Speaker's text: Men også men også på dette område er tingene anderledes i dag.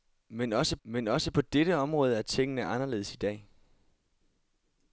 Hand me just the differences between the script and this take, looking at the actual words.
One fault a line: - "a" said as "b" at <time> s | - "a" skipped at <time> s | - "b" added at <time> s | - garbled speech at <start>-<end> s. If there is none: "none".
none